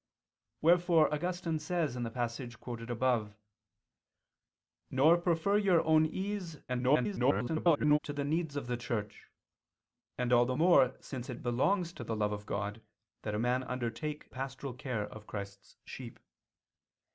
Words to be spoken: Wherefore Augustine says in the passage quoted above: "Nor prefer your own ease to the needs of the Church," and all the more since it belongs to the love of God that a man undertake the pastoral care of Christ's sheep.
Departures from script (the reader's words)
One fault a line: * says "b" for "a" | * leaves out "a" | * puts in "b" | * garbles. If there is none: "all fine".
* garbles
* leaves out "the"